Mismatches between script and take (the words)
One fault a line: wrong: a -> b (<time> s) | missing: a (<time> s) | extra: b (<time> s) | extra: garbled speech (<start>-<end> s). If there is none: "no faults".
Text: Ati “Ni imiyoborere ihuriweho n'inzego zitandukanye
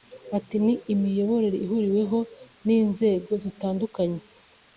no faults